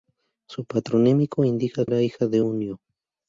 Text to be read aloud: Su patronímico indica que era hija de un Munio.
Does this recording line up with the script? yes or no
no